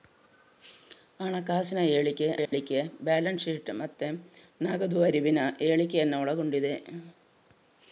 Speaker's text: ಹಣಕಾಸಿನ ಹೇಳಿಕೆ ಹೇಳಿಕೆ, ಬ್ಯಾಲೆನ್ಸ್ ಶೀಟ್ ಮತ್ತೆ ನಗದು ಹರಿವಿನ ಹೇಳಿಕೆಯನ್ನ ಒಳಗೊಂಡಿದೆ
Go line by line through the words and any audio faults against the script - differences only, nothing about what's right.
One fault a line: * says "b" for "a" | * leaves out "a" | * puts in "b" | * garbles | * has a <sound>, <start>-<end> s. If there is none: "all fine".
* has a dropout, 2.5-2.5 s